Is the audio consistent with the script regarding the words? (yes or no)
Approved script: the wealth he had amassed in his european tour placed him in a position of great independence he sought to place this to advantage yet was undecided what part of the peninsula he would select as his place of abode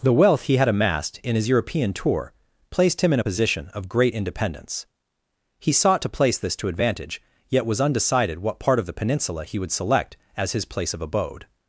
yes